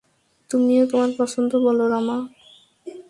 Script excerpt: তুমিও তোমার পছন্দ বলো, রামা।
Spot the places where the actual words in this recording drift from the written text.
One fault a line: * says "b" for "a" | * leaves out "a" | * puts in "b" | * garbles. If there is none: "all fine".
all fine